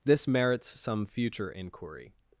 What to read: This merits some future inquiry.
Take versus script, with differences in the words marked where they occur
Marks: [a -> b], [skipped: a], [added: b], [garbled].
This merits some future inquiry.